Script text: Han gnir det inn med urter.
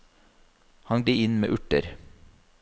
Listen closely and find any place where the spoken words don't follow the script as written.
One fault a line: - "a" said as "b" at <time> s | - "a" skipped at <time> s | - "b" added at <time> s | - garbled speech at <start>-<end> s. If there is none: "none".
- "gnir" skipped at 1.1 s